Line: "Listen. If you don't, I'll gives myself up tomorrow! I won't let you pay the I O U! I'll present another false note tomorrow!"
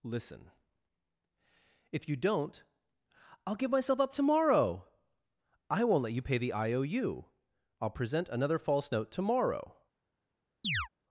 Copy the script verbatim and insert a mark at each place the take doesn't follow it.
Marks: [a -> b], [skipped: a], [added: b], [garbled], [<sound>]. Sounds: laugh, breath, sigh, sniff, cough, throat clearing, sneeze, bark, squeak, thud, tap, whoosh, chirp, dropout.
"Listen. If you don't, I'll [gives -> give] myself up tomorrow! I won't let you pay the I O U! I'll present another false note tomorrow!" [chirp]